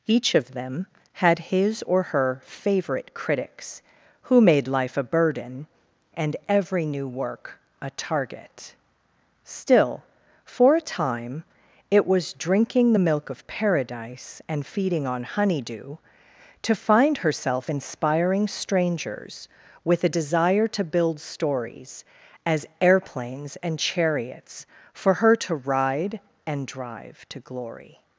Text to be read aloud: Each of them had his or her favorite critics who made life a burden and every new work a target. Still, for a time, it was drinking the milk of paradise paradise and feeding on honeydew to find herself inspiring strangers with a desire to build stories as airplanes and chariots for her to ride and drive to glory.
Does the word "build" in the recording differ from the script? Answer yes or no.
no